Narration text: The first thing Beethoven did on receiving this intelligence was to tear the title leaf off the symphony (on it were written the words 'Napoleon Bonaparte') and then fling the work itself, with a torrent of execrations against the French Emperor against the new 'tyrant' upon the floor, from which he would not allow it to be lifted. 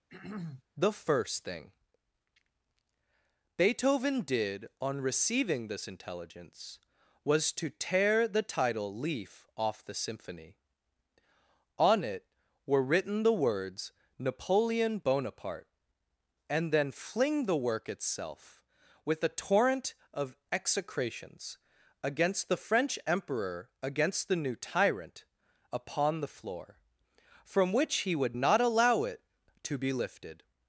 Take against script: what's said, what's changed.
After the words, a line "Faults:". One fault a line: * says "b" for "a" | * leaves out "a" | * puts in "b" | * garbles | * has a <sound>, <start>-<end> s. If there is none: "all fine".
The first thing Beethoven did on receiving this intelligence was to tear the title leaf off the symphony (on it were written the words 'Napoleon Bonaparte') and then fling the work itself, with a torrent of execrations against the French Emperor against the new 'tyrant' upon the floor, from which he would not allow it to be lifted.
Faults:
* has a throat clearing, 0.1-0.6 s